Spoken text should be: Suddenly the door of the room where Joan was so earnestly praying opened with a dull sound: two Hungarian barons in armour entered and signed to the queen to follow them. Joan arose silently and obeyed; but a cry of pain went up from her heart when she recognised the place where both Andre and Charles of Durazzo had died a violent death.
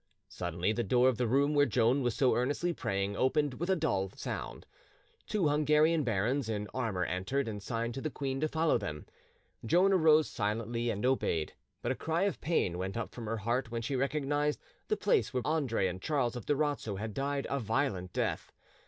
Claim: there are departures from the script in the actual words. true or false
true